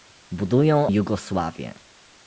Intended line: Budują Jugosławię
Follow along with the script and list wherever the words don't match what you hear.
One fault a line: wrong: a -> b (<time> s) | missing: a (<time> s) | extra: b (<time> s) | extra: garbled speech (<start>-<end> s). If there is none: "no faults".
no faults